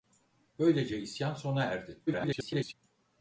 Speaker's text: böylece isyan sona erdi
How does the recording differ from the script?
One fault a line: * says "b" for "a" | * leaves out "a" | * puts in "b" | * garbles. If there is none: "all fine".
* garbles